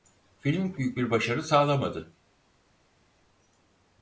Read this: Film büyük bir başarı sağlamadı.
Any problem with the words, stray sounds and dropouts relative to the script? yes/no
no